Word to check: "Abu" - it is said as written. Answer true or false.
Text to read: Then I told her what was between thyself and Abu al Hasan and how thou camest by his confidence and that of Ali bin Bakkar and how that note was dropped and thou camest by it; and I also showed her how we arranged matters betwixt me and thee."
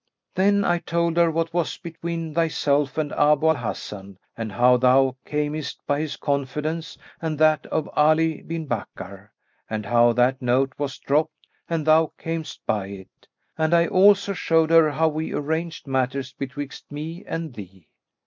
true